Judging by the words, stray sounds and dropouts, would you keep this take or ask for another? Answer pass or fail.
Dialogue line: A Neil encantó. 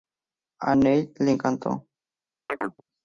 fail